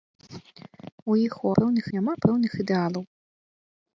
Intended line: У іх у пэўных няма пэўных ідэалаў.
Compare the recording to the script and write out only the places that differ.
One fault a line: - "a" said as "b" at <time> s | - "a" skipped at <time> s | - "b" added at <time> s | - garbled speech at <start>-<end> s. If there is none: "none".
none